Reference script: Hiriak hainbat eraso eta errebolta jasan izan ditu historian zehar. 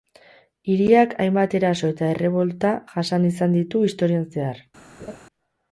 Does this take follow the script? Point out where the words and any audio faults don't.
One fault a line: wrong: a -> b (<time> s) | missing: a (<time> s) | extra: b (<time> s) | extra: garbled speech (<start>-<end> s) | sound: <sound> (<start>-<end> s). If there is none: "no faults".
sound: laugh (5.0-5.2 s)